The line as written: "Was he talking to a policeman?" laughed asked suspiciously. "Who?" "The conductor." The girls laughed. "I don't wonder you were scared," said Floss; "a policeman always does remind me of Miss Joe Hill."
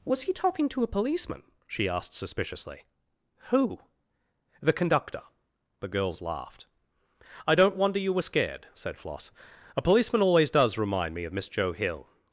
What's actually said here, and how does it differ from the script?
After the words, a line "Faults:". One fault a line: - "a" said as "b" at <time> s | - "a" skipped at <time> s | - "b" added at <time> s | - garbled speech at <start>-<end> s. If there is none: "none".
"Was he talking to a policeman?" she asked suspiciously. "Who?" "The conductor." The girls laughed. "I don't wonder you were scared," said Floss; "a policeman always does remind me of Miss Joe Hill."
Faults:
- "laughed" said as "she" at 1.7 s